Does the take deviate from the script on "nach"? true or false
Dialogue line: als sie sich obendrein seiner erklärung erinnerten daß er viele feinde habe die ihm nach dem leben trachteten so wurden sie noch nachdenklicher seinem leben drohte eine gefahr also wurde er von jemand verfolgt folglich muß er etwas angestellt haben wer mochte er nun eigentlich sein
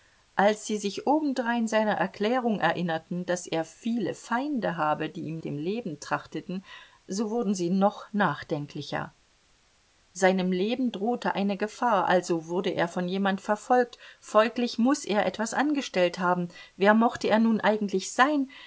true